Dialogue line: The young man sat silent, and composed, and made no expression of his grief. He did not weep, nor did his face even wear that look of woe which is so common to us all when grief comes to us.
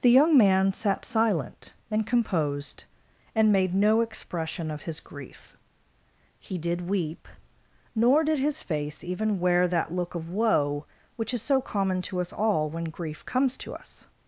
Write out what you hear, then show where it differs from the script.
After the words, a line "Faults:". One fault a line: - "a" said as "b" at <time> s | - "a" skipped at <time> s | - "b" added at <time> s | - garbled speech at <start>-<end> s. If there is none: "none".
The young man sat silent, and composed, and made no expression of his grief. He did weep, nor did his face even wear that look of woe which is so common to us all when grief comes to us.
Faults:
- "not" skipped at 6.9 s